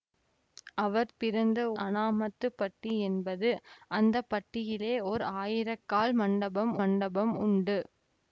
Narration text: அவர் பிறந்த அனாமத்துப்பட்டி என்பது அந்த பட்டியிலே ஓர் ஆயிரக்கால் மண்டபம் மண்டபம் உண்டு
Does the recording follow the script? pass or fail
pass